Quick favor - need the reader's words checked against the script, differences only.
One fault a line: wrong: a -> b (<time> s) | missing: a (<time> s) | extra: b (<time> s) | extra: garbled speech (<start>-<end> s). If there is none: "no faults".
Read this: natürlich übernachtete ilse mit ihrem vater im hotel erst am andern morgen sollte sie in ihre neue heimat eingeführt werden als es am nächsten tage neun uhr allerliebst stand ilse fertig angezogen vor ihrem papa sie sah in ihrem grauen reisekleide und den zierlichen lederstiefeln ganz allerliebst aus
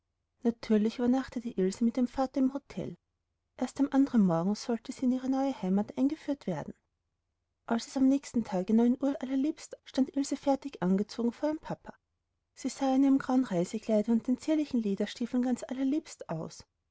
no faults